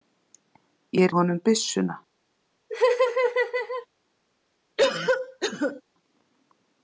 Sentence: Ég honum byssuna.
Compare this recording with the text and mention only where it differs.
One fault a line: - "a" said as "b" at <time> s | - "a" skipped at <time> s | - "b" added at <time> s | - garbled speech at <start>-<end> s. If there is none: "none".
none